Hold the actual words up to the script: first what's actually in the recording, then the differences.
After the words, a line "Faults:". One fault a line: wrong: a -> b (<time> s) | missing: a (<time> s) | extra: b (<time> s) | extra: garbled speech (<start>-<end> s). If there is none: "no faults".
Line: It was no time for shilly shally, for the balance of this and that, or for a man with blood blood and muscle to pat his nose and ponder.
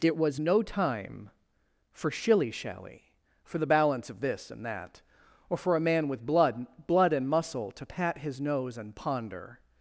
It was no time for shilly shally, for the balance of this and that, or for a man with blood blood and muscle to pat his nose and ponder.
Faults:
no faults